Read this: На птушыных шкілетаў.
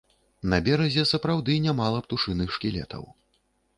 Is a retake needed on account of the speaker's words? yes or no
yes